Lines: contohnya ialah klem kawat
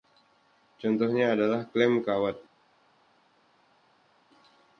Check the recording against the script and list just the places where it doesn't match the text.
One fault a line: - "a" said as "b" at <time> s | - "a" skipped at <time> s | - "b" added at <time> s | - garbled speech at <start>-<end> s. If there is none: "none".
- "ialah" said as "adalah" at 1.4 s